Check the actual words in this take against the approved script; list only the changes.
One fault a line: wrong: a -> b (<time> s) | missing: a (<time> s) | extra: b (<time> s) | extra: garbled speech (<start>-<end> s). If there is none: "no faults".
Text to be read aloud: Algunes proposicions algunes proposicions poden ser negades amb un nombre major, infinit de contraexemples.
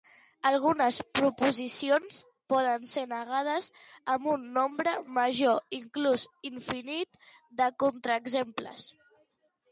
missing: algunes proposicions (2.1 s)
extra: inclús (5.8 s)